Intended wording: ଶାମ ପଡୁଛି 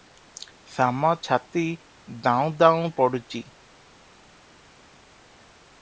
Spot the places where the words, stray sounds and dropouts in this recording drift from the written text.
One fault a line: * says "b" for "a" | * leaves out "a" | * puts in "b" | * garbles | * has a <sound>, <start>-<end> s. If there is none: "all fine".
* puts in "ଛାତି ଦାଉଁ ଦାଉଁ"